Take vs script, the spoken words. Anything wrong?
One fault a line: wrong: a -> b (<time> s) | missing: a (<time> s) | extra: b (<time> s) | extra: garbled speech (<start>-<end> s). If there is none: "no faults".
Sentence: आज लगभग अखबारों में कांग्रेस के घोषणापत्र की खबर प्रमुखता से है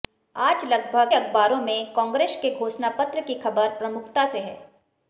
no faults